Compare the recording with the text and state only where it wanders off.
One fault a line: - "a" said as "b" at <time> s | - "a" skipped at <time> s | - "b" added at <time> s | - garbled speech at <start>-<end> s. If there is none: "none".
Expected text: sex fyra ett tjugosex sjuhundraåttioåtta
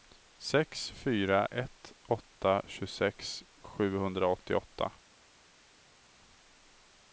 - "åtta" added at 2.1 s